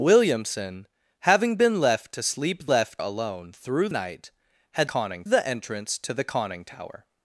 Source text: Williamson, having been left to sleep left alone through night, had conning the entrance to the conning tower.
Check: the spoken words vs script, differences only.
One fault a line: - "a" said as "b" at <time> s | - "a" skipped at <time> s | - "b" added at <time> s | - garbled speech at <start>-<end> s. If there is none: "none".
none